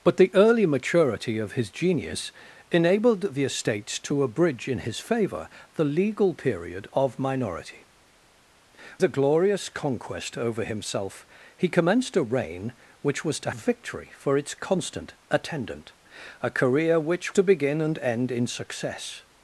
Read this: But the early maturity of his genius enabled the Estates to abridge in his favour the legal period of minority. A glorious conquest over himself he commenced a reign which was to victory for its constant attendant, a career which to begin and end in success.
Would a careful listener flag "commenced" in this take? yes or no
no